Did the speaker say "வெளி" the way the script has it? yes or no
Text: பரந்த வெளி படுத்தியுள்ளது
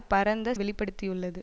yes